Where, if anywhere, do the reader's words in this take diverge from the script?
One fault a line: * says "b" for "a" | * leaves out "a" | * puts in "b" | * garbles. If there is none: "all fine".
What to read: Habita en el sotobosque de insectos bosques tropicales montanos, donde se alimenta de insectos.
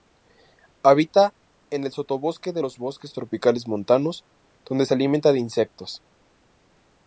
* says "los" for "insectos"